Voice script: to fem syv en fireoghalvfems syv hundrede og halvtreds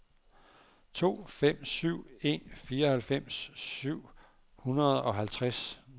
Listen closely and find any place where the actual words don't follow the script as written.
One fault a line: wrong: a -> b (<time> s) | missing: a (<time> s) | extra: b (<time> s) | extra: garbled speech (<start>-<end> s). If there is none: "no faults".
no faults